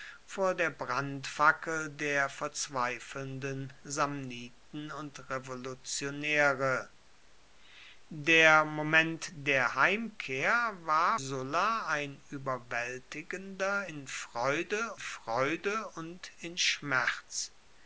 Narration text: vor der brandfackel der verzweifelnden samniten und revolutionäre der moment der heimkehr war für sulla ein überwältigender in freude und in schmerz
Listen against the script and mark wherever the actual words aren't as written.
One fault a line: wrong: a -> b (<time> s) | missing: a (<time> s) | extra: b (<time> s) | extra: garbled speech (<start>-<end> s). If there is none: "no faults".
missing: für (11.2 s)
extra: freude (15.0 s)